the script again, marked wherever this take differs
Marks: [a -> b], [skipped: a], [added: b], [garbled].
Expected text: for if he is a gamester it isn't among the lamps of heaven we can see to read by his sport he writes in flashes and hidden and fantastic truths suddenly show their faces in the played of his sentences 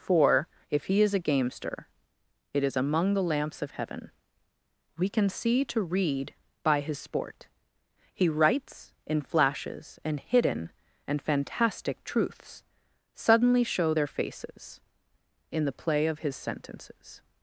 for if he is a gamester it [isn't -> is] among the lamps of heaven we can see to read by his sport he writes in flashes and hidden and fantastic truths suddenly show their faces in the [played -> play] of his sentences